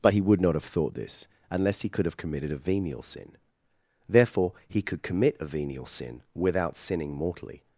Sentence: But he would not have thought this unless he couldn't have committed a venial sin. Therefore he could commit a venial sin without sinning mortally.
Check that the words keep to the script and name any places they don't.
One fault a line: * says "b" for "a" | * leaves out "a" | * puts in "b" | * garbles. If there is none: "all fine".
* says "could" for "couldn't"